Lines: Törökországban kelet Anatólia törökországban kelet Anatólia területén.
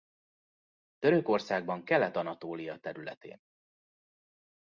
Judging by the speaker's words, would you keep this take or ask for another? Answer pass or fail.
fail